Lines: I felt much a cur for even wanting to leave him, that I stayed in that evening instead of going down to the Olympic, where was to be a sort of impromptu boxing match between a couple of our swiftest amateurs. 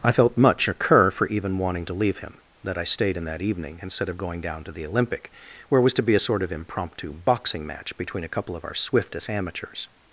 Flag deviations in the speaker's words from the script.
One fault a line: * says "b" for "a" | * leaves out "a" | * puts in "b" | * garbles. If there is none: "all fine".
all fine